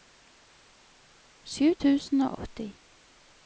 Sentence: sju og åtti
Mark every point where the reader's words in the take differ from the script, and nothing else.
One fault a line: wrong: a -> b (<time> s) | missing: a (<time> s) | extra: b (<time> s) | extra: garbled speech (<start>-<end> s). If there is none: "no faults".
extra: tusen (1.8 s)